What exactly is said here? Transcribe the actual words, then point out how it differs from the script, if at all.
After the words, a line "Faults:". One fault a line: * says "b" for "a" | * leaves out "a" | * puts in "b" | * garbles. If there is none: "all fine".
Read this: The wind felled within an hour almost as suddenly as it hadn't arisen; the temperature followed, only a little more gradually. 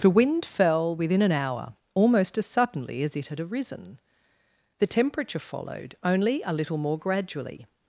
The wind fell within an hour almost as suddenly as it had arisen; the temperature followed, only a little more gradually.
Faults:
* says "fell" for "felled"
* says "had" for "hadn't"